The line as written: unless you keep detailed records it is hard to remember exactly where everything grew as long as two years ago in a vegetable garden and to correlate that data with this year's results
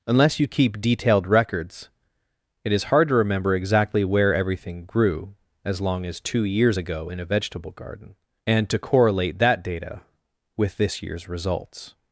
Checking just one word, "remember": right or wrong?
right